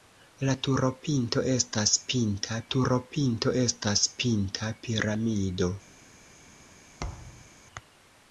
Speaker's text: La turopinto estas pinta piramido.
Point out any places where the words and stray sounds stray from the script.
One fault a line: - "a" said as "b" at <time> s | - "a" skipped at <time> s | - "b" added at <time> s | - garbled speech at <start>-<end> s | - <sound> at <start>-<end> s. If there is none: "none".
- "turopinto estas pinta" added at 2.7 s
- thud at 7.0-7.5 s